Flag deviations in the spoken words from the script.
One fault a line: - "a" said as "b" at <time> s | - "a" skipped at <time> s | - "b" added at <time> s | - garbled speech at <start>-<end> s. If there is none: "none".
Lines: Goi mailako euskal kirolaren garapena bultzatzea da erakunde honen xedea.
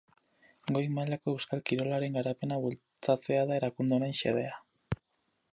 none